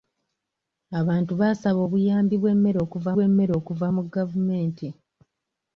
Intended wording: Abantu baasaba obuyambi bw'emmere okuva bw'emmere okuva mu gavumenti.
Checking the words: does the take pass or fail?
pass